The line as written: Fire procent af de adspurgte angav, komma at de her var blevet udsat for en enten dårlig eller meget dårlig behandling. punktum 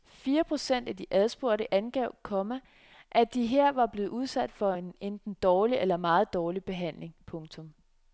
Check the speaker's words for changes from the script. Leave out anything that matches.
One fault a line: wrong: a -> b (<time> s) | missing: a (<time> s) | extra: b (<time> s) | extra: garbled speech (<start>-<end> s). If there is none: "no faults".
no faults